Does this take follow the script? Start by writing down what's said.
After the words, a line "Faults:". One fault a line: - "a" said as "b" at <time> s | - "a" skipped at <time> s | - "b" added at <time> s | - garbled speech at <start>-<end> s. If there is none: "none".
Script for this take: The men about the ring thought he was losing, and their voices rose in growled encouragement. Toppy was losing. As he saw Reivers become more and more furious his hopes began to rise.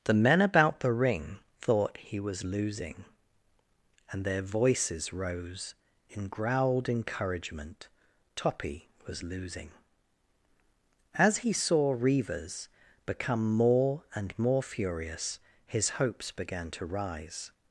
The men about the ring thought he was losing, and their voices rose in growled encouragement. Toppy was losing. As he saw Reivers become more and more furious his hopes began to rise.
Faults:
none